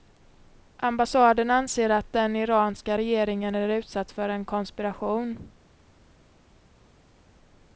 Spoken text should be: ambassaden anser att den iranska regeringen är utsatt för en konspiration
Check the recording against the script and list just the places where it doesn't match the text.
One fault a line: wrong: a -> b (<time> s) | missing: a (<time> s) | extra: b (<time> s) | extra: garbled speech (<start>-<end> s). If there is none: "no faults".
no faults